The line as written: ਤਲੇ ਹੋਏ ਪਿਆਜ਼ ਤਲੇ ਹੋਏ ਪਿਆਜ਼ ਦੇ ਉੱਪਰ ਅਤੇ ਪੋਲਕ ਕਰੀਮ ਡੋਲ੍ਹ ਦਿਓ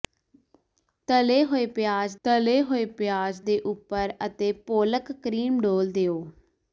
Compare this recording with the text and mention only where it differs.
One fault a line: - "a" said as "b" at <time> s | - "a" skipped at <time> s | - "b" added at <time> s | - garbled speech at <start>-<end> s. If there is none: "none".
none